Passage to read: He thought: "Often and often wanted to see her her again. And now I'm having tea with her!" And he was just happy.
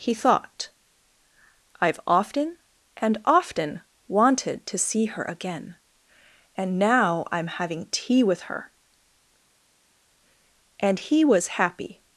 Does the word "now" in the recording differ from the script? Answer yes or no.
no